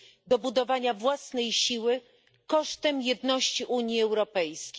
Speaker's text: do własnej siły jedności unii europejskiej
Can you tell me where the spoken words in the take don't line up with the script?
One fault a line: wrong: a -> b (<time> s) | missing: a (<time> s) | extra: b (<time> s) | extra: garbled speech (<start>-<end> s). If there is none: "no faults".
extra: budowania (0.4 s)
extra: kosztem (2.5 s)